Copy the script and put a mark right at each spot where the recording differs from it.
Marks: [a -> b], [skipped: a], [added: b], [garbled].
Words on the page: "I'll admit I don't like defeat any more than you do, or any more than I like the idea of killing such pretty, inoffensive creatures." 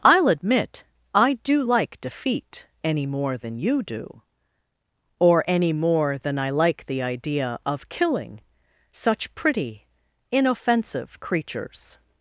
"I'll admit I [don't -> do] like defeat any more than you do, or any more than I like the idea of killing such pretty, inoffensive creatures."